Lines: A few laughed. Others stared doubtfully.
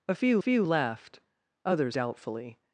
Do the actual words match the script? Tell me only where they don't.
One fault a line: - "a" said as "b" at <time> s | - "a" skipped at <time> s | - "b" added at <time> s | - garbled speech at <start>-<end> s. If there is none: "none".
- "few" added at 0.4 s
- "stared" skipped at 2.0 s